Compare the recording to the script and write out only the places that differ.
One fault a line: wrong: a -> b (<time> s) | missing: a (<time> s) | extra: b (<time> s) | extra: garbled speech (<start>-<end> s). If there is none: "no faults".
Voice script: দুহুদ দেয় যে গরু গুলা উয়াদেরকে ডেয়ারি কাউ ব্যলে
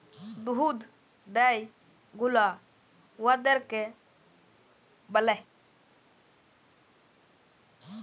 missing: যে গরু (1.6 s)
missing: ডেয়ারি কাউ (3.8 s)